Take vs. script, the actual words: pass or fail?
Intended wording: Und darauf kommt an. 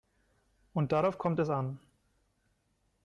fail